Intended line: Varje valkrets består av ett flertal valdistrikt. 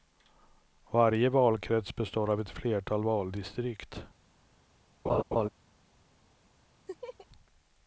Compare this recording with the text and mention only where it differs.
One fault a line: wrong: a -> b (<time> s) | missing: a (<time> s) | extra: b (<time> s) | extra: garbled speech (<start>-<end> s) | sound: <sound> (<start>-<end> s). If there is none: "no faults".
sound: laugh (5.0-5.5 s)
sound: laugh (6.9-7.3 s)